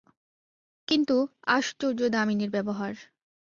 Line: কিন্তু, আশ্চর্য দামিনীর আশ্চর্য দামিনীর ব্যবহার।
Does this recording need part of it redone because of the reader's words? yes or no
yes